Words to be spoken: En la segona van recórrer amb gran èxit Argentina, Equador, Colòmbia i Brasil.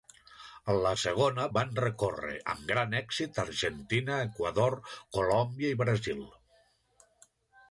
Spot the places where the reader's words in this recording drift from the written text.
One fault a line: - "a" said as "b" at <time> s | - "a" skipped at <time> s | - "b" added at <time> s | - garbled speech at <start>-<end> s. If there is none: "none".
none